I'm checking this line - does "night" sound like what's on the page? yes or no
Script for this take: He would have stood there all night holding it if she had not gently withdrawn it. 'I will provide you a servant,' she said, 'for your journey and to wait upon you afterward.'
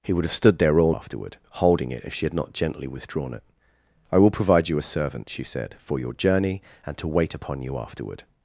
no